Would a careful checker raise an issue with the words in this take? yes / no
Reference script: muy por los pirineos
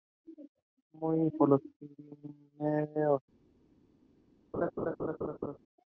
no